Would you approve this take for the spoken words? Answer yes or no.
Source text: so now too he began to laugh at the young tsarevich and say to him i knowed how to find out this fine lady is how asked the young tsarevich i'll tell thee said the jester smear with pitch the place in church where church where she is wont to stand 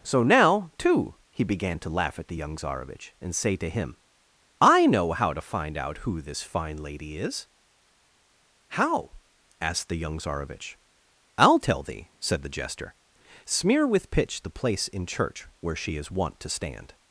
no